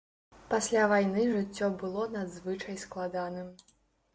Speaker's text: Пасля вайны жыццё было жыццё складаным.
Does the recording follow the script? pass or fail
fail